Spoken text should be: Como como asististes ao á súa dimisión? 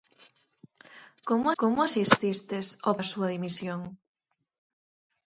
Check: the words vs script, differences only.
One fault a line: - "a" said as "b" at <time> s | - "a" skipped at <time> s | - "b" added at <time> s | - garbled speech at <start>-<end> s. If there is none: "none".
none